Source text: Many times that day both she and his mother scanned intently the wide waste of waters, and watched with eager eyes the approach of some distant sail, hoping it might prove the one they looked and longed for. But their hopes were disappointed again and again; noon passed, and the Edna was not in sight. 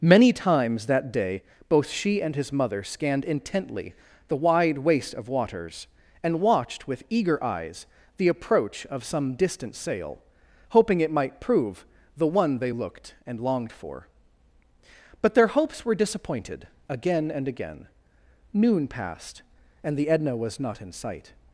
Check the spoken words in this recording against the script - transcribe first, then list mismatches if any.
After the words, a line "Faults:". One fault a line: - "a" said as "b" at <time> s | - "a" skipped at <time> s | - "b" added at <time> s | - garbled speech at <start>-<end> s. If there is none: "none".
Many times that day both she and his mother scanned intently the wide waste of waters, and watched with eager eyes the approach of some distant sail, hoping it might prove the one they looked and longed for. But their hopes were disappointed again and again; noon passed, and the Edna was not in sight.
Faults:
none